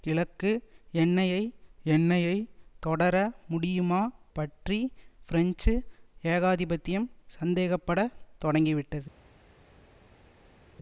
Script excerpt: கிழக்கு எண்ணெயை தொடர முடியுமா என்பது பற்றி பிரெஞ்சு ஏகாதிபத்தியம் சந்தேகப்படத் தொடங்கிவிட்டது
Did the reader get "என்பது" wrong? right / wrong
wrong